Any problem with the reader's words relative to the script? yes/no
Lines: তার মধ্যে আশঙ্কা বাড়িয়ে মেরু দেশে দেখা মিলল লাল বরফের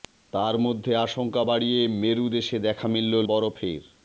yes